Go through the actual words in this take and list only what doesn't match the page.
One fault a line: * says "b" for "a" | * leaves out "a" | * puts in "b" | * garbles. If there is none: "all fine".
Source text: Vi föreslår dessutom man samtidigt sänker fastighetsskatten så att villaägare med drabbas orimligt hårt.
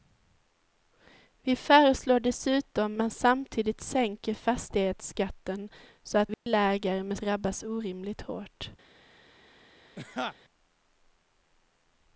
all fine